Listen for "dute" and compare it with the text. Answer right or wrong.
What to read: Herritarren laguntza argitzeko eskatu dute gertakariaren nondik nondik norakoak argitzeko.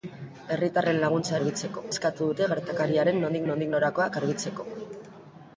right